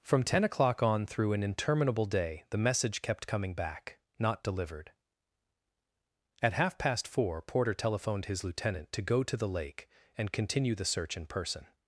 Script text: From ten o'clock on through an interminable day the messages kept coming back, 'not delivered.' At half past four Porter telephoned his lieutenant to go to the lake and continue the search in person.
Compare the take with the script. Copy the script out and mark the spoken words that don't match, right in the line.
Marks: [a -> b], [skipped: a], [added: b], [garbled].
From ten o'clock on through an interminable day the [messages -> message] kept coming back, 'not delivered.' At half past four Porter telephoned his lieutenant to go to the lake and continue the search in person.